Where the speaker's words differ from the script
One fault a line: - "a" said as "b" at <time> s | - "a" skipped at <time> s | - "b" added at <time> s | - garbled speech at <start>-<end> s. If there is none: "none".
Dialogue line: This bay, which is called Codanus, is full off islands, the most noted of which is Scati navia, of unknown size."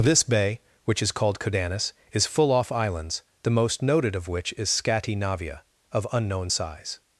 none